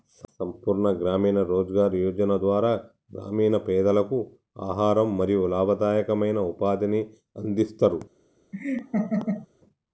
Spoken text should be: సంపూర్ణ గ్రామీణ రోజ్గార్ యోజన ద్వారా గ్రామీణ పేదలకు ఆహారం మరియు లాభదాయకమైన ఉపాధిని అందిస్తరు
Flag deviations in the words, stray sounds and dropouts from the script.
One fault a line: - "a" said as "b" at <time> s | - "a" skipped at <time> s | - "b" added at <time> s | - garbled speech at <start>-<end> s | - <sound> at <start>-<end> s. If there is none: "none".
- laugh at 8.5-9.5 s